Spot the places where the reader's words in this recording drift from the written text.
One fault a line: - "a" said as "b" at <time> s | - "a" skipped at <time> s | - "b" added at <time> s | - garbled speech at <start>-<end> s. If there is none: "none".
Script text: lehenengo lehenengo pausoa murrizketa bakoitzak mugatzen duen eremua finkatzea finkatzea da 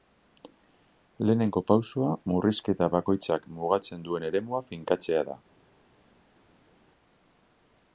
- "lehenengo" skipped at 1.6 s
- "finkatzea" skipped at 5.3 s